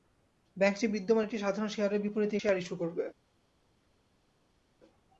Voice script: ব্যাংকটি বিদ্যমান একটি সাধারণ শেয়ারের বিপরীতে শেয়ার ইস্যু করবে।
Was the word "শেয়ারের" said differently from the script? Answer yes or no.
no